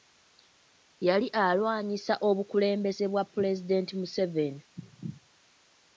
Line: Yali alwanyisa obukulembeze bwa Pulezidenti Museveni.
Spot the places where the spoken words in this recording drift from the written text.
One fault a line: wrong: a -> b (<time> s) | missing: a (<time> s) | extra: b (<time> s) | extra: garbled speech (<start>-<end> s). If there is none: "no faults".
no faults